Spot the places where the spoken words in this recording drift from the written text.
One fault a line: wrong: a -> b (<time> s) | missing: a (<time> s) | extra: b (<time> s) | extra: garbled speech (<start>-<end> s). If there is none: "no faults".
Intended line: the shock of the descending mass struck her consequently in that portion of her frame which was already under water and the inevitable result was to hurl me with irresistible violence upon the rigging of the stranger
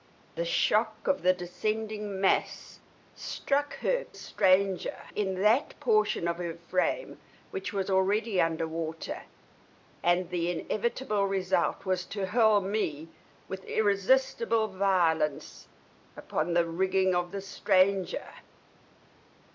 wrong: consequently -> stranger (4.1 s)